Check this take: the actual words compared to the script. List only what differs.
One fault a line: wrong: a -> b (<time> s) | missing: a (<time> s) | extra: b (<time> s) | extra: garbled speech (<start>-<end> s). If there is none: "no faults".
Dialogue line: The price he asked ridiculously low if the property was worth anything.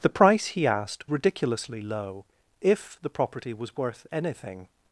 no faults